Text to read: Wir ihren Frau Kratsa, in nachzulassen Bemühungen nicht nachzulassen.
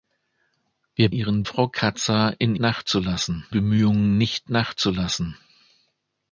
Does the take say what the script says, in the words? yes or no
yes